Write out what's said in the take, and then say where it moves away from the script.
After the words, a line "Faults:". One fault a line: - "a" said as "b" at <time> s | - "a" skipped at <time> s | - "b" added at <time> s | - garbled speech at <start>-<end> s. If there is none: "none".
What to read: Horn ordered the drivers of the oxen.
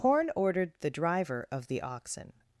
Horn ordered the driver of the oxen.
Faults:
- "drivers" said as "driver" at 0.9 s